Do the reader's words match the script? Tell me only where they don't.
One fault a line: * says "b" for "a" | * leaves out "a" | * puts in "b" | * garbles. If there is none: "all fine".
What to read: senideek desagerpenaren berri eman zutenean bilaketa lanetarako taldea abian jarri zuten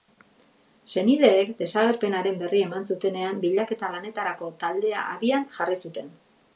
all fine